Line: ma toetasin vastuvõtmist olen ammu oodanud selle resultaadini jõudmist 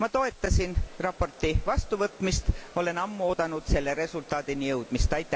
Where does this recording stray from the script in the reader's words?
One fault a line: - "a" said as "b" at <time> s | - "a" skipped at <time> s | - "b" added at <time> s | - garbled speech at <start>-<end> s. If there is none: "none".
- "raporti" added at 1.0 s